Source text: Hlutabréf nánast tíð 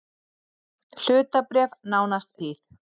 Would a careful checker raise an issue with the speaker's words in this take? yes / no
no